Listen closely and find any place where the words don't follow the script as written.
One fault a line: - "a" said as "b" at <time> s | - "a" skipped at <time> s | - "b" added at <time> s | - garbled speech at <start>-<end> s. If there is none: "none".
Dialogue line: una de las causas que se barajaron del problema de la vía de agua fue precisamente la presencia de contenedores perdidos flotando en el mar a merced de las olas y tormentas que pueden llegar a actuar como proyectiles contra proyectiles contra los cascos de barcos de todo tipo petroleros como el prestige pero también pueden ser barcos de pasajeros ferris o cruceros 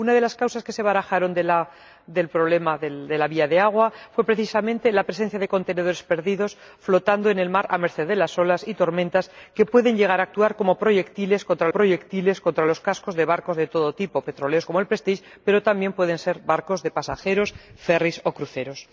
none